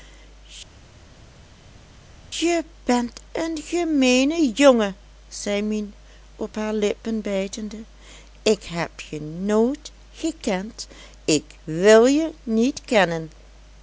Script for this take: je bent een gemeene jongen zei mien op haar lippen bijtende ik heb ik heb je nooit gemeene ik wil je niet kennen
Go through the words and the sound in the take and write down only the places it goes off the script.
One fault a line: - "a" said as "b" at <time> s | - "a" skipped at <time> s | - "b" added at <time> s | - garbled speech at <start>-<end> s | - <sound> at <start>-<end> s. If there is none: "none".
- "ik heb" skipped at 9.0 s
- "gemeene" said as "gekend" at 10.1 s